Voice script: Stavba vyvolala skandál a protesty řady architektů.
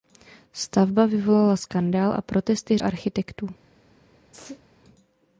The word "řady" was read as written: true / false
false